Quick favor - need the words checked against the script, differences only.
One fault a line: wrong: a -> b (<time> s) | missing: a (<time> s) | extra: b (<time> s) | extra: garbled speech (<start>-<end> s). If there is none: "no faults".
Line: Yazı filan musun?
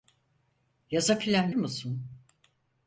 no faults